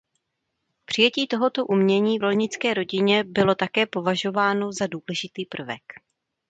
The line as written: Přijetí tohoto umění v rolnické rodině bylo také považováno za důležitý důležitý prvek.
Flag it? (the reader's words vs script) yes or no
yes